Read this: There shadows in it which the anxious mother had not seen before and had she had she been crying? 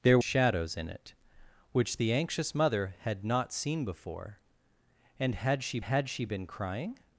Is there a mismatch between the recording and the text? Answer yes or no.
no